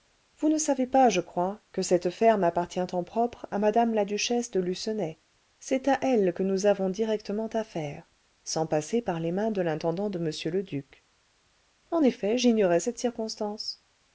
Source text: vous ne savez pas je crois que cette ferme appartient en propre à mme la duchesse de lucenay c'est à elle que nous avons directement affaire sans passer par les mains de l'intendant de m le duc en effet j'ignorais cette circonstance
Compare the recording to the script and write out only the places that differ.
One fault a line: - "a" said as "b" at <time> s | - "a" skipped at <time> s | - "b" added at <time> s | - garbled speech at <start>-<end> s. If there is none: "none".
none